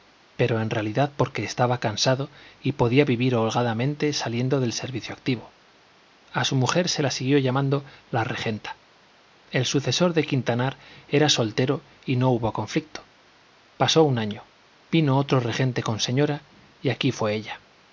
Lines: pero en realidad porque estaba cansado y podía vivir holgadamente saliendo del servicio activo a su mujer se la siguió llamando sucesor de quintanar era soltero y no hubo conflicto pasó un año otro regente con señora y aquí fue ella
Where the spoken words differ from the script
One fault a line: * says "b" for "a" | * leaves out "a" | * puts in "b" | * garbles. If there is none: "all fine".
* puts in "la regenta el"
* puts in "vino"